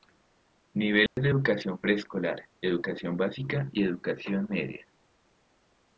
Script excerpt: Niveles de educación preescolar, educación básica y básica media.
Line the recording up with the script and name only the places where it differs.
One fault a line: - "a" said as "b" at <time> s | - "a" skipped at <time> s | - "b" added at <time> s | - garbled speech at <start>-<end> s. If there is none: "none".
- "básica" said as "educación" at 3.8 s